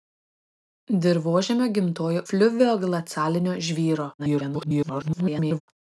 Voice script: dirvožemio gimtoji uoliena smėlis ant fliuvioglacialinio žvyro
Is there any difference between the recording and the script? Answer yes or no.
yes